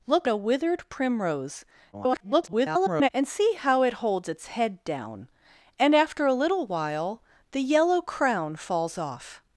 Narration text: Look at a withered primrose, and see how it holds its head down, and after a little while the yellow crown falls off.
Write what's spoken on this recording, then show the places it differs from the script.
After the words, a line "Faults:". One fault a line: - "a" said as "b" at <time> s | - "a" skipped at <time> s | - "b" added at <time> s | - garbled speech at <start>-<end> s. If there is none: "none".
Look a withered primrose, [garbled] and see how it holds its head down, and after a little while the yellow crown falls off.
Faults:
- "at" skipped at 0.3 s
- garbled speech at 1.9-3.1 s